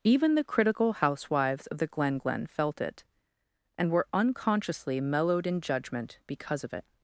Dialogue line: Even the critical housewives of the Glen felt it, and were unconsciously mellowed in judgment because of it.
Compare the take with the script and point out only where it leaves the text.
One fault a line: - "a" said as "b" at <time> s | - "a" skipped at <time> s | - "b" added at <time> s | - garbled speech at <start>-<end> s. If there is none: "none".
- "Glen" added at 2.2 s